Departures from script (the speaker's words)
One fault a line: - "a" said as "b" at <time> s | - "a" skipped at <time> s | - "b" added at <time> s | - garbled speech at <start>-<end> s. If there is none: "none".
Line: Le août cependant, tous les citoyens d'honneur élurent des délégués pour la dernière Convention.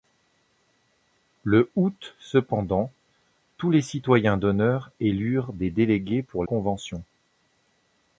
- "la dernière" skipped at 6.5 s